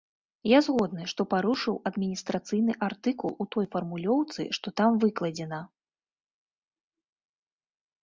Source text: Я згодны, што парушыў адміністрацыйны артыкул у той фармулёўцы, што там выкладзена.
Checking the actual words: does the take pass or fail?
pass